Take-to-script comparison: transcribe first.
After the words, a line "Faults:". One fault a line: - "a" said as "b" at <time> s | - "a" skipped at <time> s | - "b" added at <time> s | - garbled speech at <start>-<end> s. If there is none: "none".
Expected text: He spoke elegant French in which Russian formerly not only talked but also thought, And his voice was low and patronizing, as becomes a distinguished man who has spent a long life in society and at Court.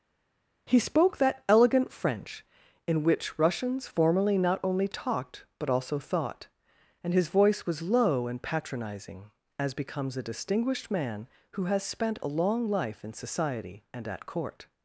He spoke that elegant French in which Russians formerly not only talked but also thought, And his voice was low and patronizing, as becomes a distinguished man who has spent a long life in society and at Court.
Faults:
- "that" added at 1.2 s
- "Russian" said as "Russians" at 3.4 s